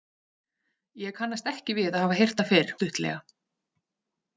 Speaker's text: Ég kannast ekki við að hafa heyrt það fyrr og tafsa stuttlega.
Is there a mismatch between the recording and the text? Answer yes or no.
yes